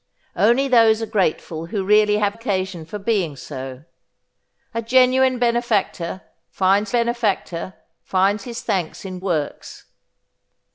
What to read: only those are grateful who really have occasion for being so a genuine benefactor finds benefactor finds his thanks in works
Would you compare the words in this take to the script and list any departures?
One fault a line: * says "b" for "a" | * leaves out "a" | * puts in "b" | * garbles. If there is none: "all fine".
all fine